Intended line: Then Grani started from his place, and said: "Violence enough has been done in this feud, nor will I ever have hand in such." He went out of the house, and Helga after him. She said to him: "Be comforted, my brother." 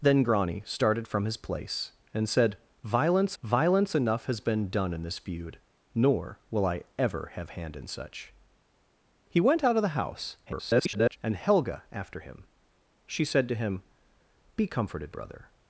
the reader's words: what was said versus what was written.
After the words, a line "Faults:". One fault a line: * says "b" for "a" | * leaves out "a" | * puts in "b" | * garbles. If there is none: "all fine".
Then Grani started from his place, and said: "Violence violence enough has been done in this feud, nor will I ever have hand in such." He went out of the house, [garbled] and Helga after him. She said to him: "Be comforted, brother."
Faults:
* puts in "violence"
* garbles
* leaves out "my"